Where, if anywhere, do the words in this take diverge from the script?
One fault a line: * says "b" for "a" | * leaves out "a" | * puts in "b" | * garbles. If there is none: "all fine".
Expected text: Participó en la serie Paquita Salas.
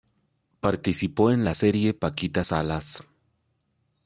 all fine